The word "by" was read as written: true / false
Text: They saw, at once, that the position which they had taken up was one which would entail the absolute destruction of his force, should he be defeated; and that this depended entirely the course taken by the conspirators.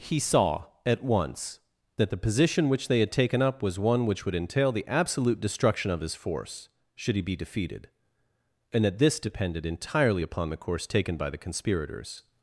true